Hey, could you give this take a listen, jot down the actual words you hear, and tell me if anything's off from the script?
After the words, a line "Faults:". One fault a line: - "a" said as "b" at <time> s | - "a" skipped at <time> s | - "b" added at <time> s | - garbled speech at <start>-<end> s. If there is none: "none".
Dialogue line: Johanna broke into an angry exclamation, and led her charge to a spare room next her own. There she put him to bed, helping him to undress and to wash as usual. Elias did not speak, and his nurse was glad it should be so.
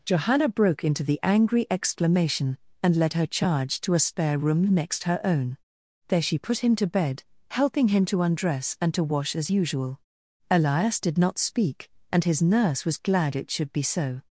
Johanna broke into the angry exclamation, and led her charge to a spare room next her own. There she put him to bed, helping him to undress and to wash as usual. Elias did not speak, and his nurse was glad it should be so.
Faults:
- "an" said as "the" at 1.0 s